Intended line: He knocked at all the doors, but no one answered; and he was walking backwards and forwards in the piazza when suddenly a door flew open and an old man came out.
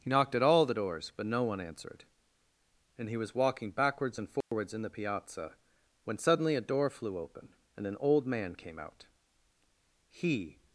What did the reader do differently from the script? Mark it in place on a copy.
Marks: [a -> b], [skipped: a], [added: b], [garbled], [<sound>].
He knocked at all the doors, but no one answered; and he was walking backwards and forwards [dropout] in the piazza when suddenly a door flew open and an old man came out. [added: He]